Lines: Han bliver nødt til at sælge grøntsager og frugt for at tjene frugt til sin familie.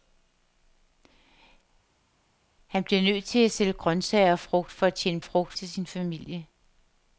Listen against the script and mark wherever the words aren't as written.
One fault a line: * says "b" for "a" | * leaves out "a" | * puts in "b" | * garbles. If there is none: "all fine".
all fine